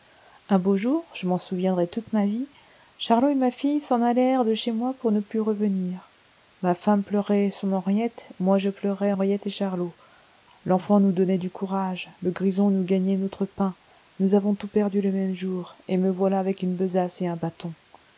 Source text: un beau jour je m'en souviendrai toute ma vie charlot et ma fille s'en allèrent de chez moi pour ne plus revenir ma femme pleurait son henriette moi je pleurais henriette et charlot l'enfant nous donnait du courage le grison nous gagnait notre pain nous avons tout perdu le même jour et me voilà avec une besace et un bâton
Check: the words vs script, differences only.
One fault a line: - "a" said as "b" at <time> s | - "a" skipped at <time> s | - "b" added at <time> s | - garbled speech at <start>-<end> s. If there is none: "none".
none